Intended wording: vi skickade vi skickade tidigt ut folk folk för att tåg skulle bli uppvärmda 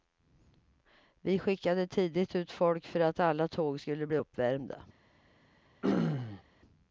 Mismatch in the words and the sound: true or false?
true